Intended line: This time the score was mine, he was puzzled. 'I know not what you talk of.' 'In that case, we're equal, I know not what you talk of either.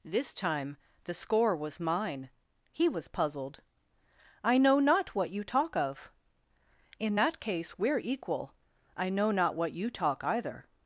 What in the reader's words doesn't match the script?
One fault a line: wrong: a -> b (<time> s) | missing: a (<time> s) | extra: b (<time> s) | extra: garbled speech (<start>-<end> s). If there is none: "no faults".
missing: of (10.2 s)